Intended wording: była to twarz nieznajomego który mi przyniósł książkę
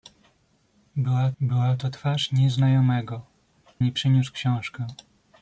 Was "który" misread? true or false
true